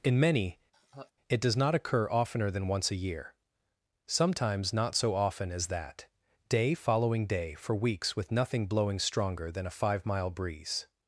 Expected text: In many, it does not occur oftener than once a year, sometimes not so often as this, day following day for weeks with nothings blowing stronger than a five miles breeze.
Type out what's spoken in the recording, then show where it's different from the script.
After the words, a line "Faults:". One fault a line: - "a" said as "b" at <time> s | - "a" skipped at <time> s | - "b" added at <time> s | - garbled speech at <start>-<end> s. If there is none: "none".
In many, it does not occur oftener than once a year, sometimes not so often as that, day following day for weeks with nothing blowing stronger than a five mile breeze.
Faults:
- "this" said as "that" at 5.7 s
- "nothings" said as "nothing" at 8.3 s
- "miles" said as "mile" at 10.1 s